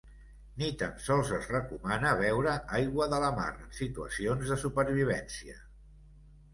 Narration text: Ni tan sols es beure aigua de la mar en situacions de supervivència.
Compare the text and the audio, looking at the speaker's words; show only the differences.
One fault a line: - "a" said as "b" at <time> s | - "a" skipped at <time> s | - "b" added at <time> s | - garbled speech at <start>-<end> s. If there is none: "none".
- "recomana" added at 1.6 s